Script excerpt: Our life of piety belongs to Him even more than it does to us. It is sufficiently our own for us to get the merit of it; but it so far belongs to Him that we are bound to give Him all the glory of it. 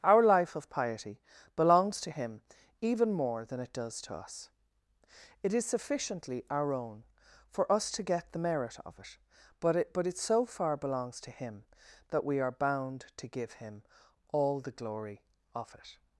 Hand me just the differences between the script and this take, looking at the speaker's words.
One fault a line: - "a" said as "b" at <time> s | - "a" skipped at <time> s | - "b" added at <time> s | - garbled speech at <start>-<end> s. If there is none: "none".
- "but it" added at 9.9 s